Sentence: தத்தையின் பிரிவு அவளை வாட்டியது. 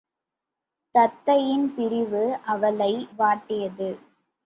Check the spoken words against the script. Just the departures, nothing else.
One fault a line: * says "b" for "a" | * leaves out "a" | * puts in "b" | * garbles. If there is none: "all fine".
all fine